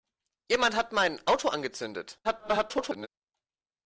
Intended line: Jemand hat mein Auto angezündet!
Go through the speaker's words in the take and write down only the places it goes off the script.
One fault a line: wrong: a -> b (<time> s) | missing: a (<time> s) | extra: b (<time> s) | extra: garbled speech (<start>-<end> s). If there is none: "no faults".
extra: garbled speech (2.2-3.1 s)